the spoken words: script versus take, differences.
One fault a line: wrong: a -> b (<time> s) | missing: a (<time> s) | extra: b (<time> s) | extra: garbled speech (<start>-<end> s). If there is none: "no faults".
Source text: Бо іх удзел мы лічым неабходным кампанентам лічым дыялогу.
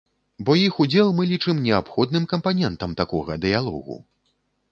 wrong: лічым -> такога (3.0 s)